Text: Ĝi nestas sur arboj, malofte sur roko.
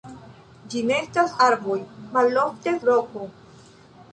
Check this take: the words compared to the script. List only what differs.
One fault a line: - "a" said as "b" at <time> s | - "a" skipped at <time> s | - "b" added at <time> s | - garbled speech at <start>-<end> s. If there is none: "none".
- "sur" skipped at 1.4 s
- "sur" skipped at 2.7 s